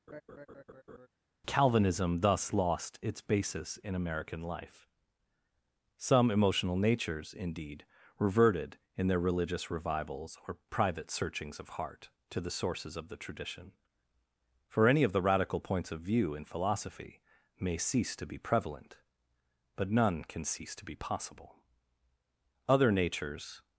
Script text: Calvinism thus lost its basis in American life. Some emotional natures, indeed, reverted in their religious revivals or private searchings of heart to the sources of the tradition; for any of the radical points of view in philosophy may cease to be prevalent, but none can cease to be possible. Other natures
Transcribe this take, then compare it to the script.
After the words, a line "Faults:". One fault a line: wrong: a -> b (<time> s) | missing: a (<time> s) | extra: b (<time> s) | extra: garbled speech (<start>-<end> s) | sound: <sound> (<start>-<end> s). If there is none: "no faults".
Calvinism thus lost its basis in American life. Some emotional natures, indeed, reverted in their religious revivals or private searchings of heart to the sources of the tradition; for any of the radical points of view in philosophy may cease to be prevalent, but none can cease to be possible. Other natures
Faults:
sound: laugh (0.1-1.1 s)